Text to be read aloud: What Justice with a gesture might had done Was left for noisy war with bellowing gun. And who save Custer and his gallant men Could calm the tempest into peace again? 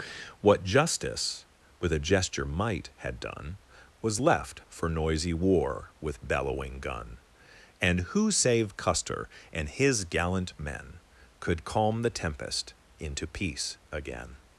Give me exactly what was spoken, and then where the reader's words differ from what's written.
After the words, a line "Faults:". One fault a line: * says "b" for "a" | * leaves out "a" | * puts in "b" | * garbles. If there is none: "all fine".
What Justice with a gesture might had done Was left for noisy war with bellowing gun. And who save Custer and his gallant men Could calm the tempest into peace again?
Faults:
all fine